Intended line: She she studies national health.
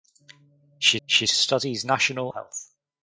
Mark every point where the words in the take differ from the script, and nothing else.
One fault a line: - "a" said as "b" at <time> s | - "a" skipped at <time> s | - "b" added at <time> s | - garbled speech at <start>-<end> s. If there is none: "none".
none